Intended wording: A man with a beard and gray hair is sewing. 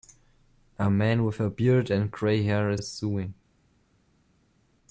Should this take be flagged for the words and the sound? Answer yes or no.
yes